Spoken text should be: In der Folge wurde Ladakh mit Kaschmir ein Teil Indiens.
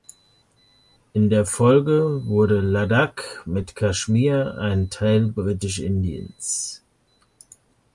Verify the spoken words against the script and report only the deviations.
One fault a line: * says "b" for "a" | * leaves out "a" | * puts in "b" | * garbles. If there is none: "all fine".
* puts in "Britisch"